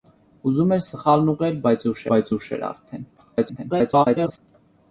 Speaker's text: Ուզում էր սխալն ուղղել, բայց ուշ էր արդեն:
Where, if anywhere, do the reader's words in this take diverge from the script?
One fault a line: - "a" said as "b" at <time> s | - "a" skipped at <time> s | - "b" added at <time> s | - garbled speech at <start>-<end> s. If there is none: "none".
- "բայց ուշ" added at 2.1 s
- garbled speech at 3.2-4.4 s